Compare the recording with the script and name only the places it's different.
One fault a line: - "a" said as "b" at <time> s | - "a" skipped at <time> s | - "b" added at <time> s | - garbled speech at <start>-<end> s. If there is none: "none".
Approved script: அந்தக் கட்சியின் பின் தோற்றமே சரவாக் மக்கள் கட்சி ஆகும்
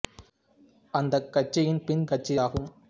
- "தோற்றமே சரவாக் மக்கள்" skipped at 2.0 s